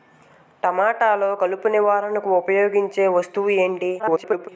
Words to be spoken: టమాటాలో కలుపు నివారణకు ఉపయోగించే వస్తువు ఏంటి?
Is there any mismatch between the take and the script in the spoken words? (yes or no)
yes